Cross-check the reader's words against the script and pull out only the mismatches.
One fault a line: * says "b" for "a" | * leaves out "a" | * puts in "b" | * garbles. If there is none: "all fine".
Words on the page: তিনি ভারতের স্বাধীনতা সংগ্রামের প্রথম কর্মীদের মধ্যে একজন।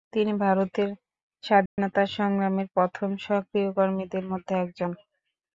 * puts in "সক্রিয়"